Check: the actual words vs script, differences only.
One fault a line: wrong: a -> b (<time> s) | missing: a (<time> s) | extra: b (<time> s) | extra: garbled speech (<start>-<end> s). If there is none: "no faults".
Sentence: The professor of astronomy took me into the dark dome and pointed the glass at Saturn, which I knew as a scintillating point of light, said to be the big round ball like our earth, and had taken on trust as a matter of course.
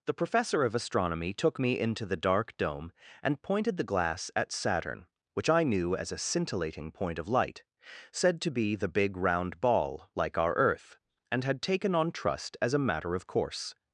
no faults